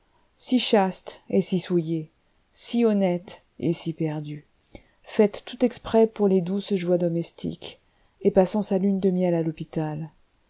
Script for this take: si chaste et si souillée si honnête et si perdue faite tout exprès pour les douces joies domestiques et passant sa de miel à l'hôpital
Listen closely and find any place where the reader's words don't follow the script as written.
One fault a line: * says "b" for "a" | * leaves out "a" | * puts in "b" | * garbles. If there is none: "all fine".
* puts in "lune"